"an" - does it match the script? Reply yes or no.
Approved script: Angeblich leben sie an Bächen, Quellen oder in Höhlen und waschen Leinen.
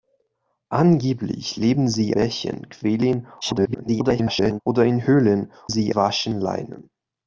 no